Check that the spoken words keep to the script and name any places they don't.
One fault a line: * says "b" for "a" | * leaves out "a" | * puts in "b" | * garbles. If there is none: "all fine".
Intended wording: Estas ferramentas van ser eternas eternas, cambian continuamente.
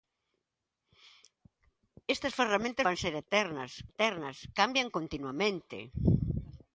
all fine